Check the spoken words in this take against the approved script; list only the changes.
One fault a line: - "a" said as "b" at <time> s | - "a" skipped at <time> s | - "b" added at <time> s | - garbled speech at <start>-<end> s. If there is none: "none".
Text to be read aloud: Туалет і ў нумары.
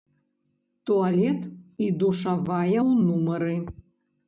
- "душавая" added at 2.0 s